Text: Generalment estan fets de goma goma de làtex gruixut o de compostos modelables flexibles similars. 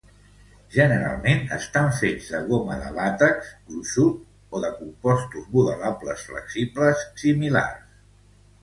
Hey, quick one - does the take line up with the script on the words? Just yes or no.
no